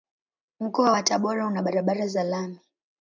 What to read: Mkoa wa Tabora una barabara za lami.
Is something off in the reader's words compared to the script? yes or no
no